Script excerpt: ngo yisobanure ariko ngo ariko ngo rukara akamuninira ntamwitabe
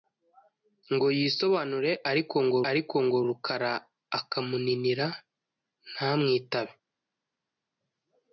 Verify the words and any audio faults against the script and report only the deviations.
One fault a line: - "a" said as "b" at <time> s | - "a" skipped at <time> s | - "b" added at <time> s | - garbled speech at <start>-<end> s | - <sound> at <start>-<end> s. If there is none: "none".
none